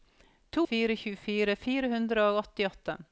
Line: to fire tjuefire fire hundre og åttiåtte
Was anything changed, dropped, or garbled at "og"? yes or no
no